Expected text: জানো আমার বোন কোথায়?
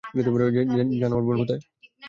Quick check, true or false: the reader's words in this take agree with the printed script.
true